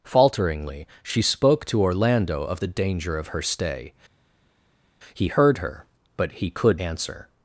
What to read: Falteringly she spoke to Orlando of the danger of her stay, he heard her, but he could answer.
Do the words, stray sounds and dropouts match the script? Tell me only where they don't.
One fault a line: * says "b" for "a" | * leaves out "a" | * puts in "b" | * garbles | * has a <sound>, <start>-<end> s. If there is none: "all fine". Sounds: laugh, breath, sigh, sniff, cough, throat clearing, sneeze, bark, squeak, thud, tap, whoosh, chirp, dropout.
all fine